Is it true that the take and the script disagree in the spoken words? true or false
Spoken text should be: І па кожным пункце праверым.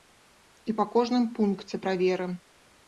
false